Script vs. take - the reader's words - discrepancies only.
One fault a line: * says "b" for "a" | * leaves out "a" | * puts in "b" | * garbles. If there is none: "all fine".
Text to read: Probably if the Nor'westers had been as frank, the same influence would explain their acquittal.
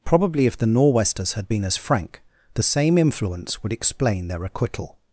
all fine